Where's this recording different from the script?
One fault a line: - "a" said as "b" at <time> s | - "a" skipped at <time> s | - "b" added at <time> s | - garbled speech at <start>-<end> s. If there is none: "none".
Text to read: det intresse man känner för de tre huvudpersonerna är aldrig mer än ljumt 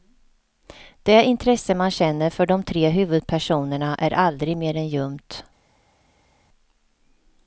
none